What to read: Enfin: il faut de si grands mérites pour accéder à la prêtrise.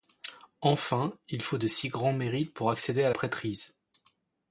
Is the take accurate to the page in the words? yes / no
no